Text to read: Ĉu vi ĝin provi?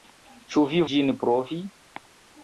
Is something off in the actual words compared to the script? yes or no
no